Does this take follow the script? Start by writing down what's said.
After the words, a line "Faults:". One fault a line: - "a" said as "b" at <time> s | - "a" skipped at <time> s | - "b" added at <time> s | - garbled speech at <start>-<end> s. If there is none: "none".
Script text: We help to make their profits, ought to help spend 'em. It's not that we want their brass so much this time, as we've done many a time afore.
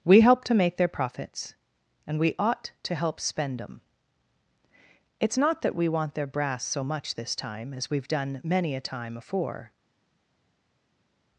We help to make their profits, and we ought to help spend 'em. It's not that we want their brass so much this time, as we've done many a time afore.
Faults:
- "and we" added at 2.1 s